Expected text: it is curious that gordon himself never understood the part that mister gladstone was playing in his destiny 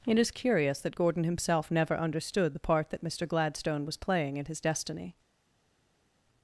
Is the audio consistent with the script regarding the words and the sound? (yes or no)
yes